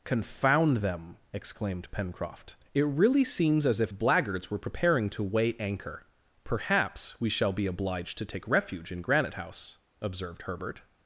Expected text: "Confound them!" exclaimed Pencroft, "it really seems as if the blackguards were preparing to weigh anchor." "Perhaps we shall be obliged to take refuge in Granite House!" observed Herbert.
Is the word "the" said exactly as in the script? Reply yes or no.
no